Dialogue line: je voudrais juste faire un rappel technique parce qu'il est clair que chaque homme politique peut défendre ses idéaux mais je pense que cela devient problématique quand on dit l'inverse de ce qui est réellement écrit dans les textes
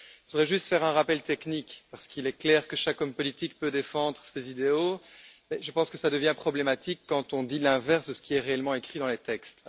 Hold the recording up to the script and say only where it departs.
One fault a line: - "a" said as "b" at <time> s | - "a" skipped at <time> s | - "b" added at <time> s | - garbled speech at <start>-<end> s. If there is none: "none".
none